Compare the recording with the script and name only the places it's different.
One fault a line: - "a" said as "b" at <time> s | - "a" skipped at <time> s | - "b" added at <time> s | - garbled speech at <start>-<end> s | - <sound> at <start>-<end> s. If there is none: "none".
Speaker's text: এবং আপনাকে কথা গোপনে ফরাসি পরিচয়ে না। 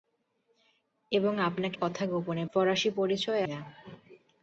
none